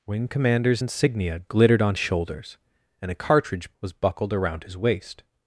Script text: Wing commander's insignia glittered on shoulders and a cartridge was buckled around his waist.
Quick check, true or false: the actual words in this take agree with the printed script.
true